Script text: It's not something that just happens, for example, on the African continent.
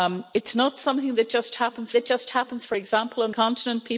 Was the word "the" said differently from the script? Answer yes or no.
yes